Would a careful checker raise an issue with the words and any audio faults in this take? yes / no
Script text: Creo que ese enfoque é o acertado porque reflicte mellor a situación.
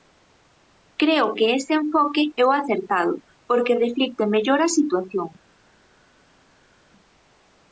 no